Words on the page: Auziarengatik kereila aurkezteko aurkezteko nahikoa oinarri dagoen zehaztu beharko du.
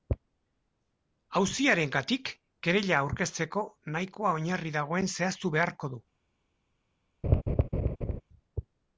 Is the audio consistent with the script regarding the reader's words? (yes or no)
no